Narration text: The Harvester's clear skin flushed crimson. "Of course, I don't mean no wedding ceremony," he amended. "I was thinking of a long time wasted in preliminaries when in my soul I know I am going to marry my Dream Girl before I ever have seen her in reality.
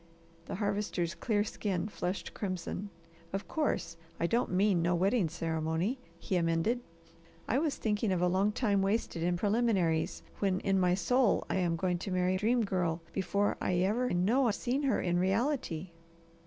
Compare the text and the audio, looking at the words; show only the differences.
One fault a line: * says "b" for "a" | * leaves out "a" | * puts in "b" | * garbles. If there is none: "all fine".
* leaves out "know"
* leaves out "my"
* says "know" for "have"